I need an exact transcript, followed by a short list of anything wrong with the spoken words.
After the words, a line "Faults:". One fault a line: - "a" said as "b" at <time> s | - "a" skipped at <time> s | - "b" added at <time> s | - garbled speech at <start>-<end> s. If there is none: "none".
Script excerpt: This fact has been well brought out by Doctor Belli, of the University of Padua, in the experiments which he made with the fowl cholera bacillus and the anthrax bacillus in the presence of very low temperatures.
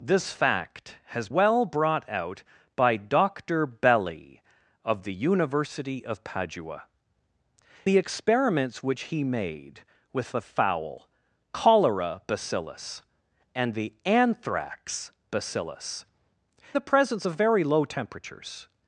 This fact has well brought out by Doctor Belli, of the University of Padua, the experiments which he made with the fowl cholera bacillus and the anthrax bacillus the presence of very low temperatures.
Faults:
- "been" skipped at 1.3 s
- "in" skipped at 6.8 s
- "in" skipped at 16.1 s